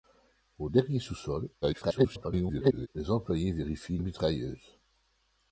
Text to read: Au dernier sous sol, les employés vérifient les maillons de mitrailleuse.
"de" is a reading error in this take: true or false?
true